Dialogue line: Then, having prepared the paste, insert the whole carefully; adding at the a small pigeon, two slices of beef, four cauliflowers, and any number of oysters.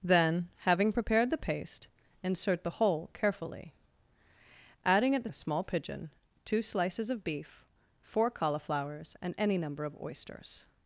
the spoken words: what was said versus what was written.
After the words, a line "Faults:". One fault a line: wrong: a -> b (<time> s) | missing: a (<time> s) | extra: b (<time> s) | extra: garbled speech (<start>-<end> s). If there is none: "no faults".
Then, having prepared the paste, insert the whole carefully; adding at the a small pigeon, two slices of beef, four cauliflowers, and any number of oysters.
Faults:
no faults